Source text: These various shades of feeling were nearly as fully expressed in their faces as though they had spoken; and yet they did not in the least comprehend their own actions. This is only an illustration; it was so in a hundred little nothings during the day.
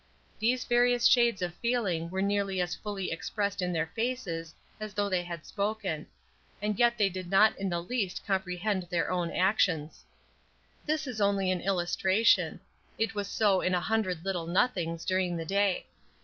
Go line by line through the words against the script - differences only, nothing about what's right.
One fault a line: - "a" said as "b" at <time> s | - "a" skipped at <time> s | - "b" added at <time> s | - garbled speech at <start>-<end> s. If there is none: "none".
none